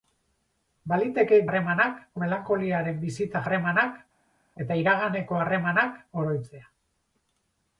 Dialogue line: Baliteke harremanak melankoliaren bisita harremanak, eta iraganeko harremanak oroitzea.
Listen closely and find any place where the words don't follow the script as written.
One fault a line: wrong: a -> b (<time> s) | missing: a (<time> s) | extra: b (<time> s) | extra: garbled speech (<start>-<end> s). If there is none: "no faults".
no faults